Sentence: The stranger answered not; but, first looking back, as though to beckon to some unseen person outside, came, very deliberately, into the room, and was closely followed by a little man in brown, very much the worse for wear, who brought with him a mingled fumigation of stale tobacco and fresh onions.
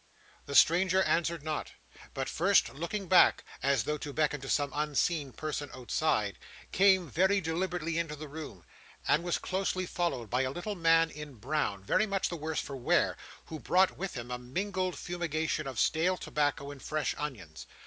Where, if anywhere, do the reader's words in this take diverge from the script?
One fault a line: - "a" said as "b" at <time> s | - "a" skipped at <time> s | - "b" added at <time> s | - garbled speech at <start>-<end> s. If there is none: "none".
none